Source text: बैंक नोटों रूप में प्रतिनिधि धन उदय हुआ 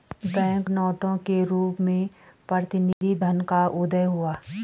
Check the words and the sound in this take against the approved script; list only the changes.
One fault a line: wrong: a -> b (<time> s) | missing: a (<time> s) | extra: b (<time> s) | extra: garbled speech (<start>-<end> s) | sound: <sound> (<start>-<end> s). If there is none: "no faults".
extra: के (1.3 s)
sound: dropout (2.9-3.0 s)
extra: का (3.5 s)